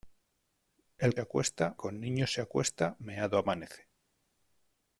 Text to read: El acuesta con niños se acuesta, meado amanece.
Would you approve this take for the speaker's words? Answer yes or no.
yes